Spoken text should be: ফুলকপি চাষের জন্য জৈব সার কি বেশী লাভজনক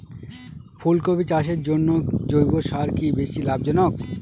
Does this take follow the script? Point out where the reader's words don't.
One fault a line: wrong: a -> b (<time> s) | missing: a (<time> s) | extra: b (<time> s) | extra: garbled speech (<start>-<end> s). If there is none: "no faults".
no faults